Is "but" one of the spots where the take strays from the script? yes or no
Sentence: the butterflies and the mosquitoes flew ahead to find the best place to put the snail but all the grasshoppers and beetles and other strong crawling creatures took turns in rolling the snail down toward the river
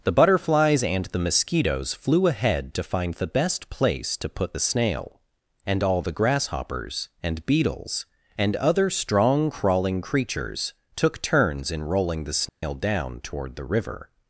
yes